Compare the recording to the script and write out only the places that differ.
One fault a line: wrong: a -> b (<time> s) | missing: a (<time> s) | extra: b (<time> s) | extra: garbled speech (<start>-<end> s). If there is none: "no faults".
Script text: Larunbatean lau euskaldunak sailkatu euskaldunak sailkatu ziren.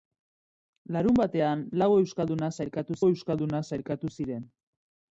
no faults